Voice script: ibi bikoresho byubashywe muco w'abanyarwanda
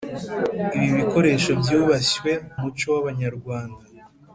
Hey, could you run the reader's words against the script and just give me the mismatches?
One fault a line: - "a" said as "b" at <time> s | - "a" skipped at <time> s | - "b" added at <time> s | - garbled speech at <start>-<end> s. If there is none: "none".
none